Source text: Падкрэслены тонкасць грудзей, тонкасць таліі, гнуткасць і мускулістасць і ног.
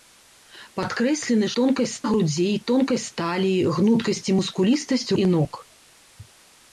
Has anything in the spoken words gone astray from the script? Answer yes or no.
no